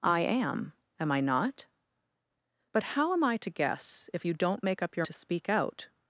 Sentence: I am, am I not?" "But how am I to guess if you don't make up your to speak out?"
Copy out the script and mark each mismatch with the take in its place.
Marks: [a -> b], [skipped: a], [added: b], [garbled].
I am, am I not?" "But how am I to guess if you don't make up your to speak out?"